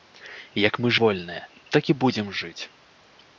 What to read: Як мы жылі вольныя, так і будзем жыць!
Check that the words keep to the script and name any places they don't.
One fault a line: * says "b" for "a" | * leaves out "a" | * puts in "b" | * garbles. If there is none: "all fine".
* leaves out "жылі"